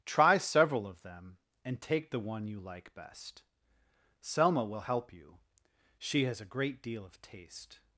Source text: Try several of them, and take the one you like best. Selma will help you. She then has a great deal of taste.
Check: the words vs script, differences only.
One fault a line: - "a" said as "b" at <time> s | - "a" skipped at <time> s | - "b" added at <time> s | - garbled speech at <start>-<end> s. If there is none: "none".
- "then" skipped at 6.2 s